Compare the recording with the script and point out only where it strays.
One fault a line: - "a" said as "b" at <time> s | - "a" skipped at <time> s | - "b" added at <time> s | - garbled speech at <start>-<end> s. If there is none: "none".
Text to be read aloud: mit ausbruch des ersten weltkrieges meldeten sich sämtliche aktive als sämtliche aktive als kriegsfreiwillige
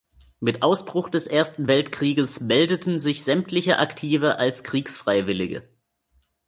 - "sämtliche aktive als" skipped at 4.6 s